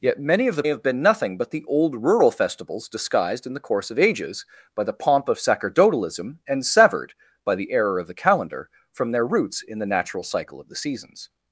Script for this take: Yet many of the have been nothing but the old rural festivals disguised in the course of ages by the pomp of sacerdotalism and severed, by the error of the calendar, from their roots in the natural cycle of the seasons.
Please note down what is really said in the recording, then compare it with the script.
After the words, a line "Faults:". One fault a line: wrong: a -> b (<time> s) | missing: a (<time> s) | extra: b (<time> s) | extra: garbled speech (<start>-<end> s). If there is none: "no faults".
Yet many of the have been nothing but the old rural festivals disguised in the course of ages by the pomp of sacerdotalism and severed, by the error of the calendar, from their roots in the natural cycle of the seasons.
Faults:
no faults